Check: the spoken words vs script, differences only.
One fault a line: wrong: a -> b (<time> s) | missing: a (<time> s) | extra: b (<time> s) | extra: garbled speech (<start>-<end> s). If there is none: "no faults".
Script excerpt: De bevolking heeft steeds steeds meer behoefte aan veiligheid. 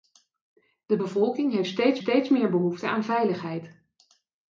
no faults